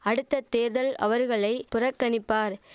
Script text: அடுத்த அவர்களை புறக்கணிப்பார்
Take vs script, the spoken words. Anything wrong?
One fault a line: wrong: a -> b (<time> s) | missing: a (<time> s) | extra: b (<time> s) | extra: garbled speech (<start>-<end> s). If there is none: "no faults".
extra: தேர்தல் (0.5 s)